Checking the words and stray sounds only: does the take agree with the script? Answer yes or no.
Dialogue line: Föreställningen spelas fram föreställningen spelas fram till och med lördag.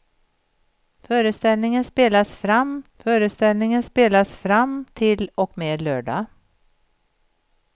yes